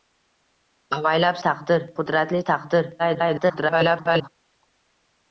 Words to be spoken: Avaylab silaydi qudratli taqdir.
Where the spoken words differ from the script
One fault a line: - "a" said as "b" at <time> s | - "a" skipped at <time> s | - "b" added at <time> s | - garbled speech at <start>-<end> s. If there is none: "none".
- "silaydi" said as "taqdir" at 1.5 s
- garbled speech at 3.0-4.3 s